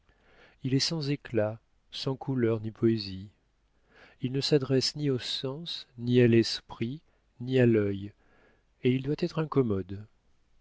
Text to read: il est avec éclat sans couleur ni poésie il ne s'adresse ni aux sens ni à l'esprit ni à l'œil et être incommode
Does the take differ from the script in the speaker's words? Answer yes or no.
yes